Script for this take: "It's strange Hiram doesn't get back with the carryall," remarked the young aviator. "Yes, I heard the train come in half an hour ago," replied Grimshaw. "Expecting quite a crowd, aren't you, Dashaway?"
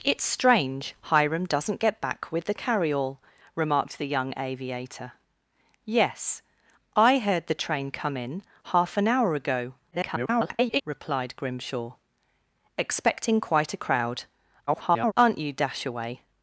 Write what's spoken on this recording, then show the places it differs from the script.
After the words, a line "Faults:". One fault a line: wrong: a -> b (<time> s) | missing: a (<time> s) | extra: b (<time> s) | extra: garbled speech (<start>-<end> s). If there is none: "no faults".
"It's strange Hiram doesn't get back with the carryall," remarked the young aviator. "Yes, I heard the train come in half an hour ago," [garbled] replied Grimshaw. "Expecting quite a crowd, [garbled] aren't you, Dashaway?"
Faults:
extra: garbled speech (9.9-10.8 s)
extra: garbled speech (14.7-15.1 s)